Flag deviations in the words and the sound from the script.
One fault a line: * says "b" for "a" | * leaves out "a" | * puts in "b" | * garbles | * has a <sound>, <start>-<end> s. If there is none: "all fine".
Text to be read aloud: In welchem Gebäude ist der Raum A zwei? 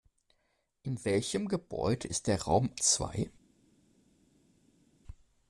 * leaves out "A"